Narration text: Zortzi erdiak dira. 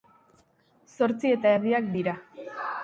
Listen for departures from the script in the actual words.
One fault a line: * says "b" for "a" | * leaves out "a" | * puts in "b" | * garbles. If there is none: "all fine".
* puts in "eta"